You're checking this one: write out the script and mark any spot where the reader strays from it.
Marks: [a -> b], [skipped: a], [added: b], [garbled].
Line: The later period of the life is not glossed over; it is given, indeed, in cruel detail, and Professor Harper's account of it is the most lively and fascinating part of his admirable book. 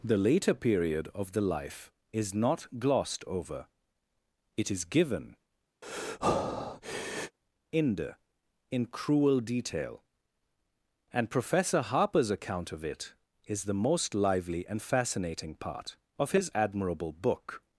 The later period of the life is not glossed over; it is given, [indeed, -> inde] in cruel detail, and Professor Harper's account of it is the most lively and fascinating part of his admirable book.